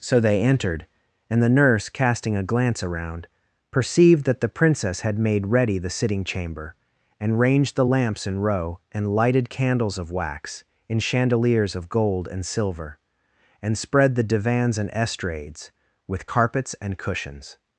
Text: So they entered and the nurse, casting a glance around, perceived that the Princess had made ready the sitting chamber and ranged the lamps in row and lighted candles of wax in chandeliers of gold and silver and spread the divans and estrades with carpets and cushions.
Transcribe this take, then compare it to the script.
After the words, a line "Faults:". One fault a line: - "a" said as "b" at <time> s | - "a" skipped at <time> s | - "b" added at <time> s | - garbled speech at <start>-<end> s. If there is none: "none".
So they entered and the nurse, casting a glance around, perceived that the Princess had made ready the sitting chamber and ranged the lamps in row and lighted candles of wax in chandeliers of gold and silver and spread the divans and estrades with carpets and cushions.
Faults:
none